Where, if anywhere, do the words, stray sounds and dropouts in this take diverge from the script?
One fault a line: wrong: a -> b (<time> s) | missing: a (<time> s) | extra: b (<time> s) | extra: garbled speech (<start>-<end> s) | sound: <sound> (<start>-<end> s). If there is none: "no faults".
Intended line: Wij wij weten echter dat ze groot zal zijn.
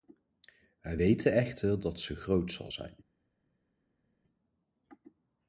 missing: wij (1.0 s)